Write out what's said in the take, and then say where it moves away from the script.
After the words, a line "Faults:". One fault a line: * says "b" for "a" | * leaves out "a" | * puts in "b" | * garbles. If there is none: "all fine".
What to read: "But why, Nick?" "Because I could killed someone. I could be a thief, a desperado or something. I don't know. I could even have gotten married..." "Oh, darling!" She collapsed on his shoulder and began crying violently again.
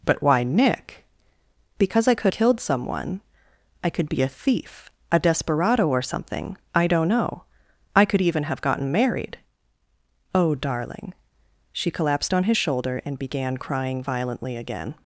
"But why, Nick?" "Because I could killed someone. I could be a thief, a desperado or something. I don't know. I could even have gotten married..." "Oh, darling!" She collapsed on his shoulder and began crying violently again.
Faults:
all fine